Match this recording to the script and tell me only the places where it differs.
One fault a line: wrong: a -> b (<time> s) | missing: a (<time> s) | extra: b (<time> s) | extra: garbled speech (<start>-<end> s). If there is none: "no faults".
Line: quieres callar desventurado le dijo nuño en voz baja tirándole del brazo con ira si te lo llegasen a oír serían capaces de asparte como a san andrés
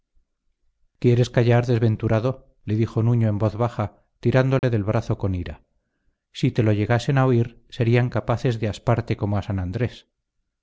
no faults